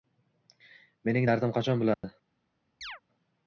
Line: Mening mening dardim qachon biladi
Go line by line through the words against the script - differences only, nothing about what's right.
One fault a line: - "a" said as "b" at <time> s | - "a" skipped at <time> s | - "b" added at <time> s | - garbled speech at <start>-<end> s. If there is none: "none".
- "mening" skipped at 1.3 s